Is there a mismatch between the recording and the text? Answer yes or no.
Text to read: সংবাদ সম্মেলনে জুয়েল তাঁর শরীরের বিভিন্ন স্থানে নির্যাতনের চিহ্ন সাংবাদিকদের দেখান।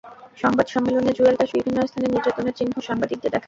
yes